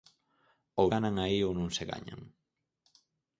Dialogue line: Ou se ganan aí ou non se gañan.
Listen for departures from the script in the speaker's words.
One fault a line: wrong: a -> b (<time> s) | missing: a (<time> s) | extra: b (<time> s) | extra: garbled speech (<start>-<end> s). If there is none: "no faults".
missing: se (0.9 s)